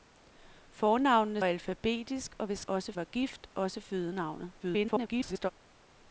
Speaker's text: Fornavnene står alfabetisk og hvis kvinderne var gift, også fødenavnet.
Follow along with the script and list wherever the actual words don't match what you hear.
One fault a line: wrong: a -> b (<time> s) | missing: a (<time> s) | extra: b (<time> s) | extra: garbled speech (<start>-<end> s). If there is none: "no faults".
missing: står (1.4 s)
wrong: kvinderne -> også (2.7 s)
extra: garbled speech (4.6-5.5 s)